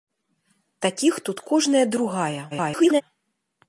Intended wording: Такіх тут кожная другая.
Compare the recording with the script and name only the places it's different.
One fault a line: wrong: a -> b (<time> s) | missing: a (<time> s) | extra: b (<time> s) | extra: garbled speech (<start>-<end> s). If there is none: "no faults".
extra: garbled speech (2.5-3.0 s)